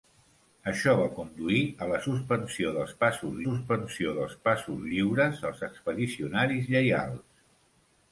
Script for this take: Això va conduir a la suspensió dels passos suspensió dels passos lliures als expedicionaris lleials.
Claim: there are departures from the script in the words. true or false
false